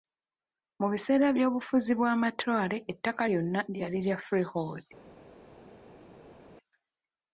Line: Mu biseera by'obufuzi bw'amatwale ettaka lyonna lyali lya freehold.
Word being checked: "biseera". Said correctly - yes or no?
yes